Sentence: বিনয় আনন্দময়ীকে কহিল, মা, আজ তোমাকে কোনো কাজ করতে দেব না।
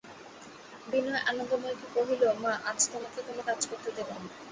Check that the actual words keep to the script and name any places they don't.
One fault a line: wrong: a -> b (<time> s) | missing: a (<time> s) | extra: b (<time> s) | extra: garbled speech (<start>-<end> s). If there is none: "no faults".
no faults